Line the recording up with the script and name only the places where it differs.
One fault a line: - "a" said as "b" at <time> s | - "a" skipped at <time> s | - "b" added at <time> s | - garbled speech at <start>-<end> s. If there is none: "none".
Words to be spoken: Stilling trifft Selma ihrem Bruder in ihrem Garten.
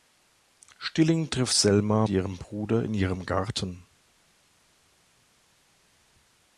none